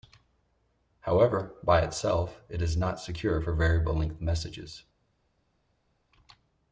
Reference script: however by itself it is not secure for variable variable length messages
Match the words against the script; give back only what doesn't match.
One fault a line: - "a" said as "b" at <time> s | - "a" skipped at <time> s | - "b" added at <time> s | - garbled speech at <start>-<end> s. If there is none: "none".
- "variable" skipped at 3.9 s